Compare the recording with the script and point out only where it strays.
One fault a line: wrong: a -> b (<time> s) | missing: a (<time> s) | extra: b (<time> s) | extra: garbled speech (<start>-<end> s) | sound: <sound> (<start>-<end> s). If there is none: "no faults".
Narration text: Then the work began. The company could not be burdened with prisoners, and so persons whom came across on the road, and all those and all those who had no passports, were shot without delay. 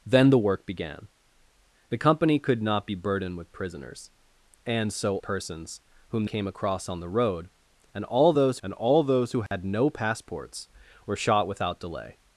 sound: dropout (9.5-9.5 s)